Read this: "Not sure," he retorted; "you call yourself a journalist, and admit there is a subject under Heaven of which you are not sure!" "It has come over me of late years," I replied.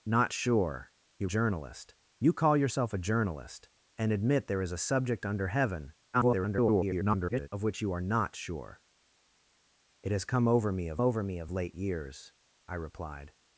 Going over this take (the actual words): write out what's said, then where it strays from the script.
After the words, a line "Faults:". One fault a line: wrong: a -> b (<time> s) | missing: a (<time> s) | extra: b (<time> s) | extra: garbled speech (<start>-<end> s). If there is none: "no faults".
"Not sure," he journalist; "you call yourself a journalist, and admit there is a subject under Heaven [garbled] of which you are not sure!" "It has come over me of over me of late years," I replied.
Faults:
wrong: retorted -> journalist (1.2 s)
extra: garbled speech (6.1-7.5 s)
extra: over me of (11.0 s)